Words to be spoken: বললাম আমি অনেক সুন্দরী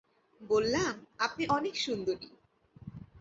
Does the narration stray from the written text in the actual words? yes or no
yes